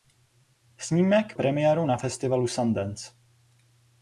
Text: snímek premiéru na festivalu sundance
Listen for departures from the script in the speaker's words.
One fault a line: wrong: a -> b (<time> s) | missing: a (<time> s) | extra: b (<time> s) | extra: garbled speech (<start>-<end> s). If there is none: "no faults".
no faults